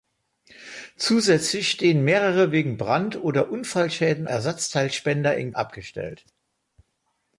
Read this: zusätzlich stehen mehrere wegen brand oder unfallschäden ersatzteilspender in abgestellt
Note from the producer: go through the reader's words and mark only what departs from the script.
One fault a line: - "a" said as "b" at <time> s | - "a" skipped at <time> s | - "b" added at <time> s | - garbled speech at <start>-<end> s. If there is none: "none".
none